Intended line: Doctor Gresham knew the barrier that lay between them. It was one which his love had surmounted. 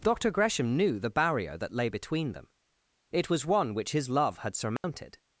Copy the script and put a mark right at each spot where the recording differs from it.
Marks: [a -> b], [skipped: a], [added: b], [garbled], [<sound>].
Doctor Gresham knew the barrier that lay between them. It was one which his love had surmounted. [dropout]